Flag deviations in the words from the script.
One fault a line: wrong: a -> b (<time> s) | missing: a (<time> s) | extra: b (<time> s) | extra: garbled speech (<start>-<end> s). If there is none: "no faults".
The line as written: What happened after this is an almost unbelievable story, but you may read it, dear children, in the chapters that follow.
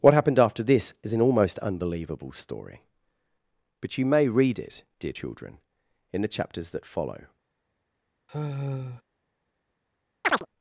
no faults